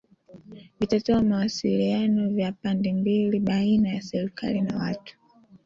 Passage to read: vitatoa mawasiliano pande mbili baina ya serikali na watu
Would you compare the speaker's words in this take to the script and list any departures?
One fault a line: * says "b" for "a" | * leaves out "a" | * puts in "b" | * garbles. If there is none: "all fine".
* puts in "ya"